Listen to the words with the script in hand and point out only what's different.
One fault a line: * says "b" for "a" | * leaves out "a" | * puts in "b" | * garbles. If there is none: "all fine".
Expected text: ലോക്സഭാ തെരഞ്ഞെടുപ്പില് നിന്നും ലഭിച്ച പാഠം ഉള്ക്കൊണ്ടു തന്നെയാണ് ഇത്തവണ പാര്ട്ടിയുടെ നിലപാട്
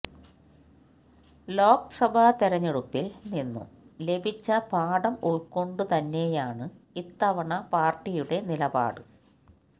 all fine